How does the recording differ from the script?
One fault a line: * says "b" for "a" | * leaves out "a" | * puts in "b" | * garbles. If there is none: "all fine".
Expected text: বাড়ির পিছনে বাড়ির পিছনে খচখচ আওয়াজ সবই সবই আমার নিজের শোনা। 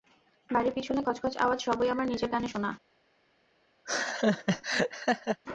* leaves out "বাড়ির পিছনে"
* leaves out "সবই"
* puts in "কানে"